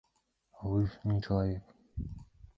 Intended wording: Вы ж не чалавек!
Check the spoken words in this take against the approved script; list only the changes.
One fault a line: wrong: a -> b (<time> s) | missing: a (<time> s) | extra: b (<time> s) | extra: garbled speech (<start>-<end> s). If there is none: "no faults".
no faults